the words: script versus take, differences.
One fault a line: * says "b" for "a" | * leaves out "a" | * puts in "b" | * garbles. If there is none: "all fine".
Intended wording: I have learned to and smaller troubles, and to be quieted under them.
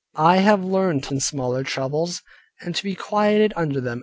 all fine